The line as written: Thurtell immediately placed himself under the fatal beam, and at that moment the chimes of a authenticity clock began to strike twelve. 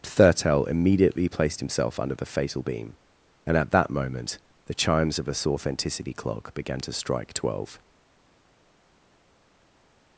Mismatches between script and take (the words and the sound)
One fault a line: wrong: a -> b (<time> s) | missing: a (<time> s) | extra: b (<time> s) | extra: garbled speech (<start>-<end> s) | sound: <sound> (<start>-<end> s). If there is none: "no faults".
no faults